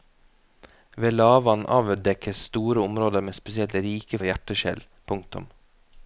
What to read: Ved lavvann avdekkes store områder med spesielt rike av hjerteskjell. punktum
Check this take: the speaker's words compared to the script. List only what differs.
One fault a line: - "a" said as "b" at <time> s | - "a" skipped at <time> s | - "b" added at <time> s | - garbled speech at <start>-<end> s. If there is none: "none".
none